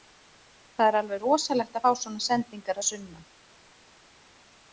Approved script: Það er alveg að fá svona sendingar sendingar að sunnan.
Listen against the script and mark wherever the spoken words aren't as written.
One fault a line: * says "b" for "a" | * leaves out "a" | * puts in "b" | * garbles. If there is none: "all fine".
* puts in "rosalegt"
* leaves out "sendingar"